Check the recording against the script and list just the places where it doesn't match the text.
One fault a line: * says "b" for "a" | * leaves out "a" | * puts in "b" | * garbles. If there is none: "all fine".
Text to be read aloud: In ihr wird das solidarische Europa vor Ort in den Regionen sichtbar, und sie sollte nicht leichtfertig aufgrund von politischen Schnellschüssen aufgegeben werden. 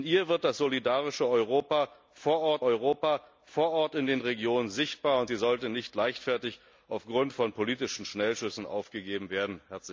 * puts in "Europa vor Ort"